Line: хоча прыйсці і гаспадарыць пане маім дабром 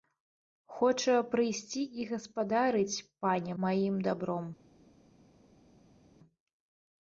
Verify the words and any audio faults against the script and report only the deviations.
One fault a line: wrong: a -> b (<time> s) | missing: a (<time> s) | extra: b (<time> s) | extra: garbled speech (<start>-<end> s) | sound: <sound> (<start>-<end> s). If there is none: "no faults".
no faults